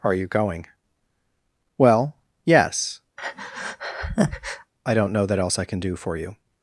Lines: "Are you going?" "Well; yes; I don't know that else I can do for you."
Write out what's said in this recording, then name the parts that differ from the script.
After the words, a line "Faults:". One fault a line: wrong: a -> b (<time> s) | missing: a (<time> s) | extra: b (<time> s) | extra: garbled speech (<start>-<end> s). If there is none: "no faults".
"Are you going?" "Well; yes; I don't know that else I can do for you."
Faults:
no faults